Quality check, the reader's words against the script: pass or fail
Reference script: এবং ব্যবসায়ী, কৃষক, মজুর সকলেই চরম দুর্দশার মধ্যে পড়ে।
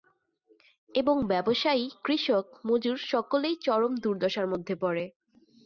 pass